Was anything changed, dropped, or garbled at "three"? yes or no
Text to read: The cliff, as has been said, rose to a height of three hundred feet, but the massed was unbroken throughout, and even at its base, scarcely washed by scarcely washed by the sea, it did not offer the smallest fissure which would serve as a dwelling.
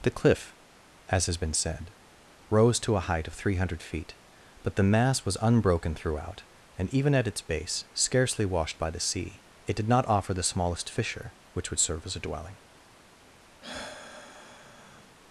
no